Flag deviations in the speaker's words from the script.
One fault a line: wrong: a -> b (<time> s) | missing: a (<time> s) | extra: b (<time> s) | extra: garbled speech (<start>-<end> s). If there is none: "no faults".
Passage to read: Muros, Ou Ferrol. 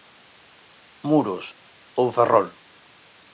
no faults